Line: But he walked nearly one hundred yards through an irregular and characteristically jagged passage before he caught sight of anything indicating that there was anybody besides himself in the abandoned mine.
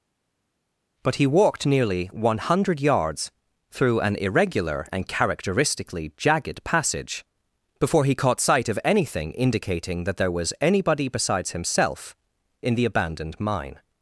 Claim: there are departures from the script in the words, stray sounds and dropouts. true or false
false